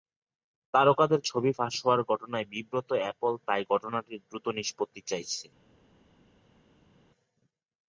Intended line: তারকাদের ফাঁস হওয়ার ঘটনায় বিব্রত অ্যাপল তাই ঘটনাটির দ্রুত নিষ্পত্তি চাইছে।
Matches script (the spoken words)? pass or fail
fail